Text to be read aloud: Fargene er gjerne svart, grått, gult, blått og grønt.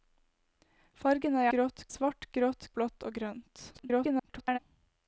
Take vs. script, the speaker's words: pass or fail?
fail